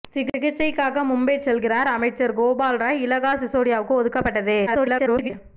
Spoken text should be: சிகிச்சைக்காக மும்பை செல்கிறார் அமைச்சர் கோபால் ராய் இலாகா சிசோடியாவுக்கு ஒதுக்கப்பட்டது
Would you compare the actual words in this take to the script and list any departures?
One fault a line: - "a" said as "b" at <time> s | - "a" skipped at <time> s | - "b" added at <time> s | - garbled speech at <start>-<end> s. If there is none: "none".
- garbled speech at 4.7-5.3 s